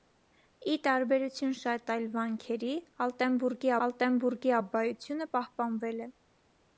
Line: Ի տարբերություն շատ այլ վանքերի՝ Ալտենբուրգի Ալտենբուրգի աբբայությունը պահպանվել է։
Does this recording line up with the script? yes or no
yes